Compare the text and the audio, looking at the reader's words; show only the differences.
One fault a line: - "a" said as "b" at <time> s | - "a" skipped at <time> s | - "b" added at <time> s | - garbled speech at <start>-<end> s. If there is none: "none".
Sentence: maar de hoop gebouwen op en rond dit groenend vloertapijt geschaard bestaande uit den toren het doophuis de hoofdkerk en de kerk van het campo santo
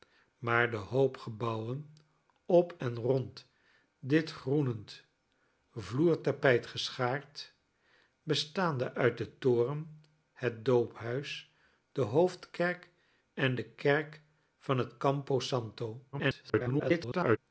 - garbled speech at 16.1-17.4 s